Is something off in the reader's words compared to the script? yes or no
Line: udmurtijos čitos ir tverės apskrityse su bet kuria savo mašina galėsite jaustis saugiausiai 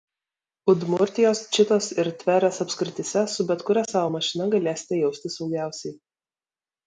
no